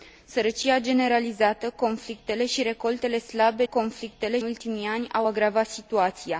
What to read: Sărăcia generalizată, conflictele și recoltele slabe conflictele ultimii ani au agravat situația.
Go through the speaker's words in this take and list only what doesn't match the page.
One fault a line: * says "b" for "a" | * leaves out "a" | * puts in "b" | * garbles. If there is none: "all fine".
all fine